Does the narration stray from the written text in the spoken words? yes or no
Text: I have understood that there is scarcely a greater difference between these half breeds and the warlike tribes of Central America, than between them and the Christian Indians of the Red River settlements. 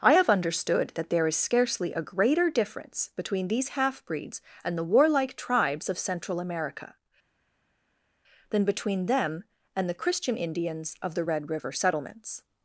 no